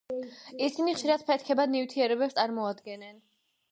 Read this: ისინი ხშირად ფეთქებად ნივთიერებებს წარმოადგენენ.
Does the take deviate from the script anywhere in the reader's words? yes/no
no